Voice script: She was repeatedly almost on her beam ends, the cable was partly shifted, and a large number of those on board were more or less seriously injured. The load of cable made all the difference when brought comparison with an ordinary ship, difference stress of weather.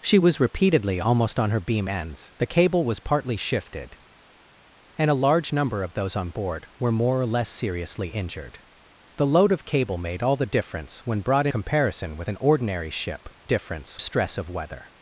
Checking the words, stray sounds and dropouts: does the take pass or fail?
pass